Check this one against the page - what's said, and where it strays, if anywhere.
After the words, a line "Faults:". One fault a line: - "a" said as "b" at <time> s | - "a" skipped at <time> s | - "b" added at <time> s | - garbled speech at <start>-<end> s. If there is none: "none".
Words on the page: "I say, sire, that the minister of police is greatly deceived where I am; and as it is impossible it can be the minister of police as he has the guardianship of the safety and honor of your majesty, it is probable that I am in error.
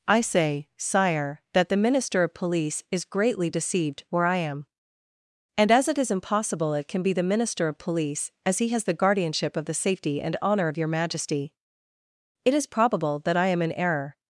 "I say, sire, that the minister of police is greatly deceived where I am; and as it is impossible it can be the minister of police as he has the guardianship of the safety and honor of your majesty, it is probable that I am in error.
Faults:
none